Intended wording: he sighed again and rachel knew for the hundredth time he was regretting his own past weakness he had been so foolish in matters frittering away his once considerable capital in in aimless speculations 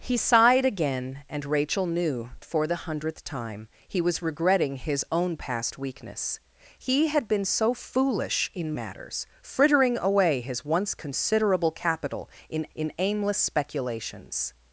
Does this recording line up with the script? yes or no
yes